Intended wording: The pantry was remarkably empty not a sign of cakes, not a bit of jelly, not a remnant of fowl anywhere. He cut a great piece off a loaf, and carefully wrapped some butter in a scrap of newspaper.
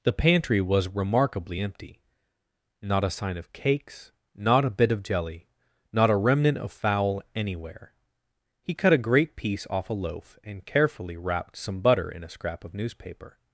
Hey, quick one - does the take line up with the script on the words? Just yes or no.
yes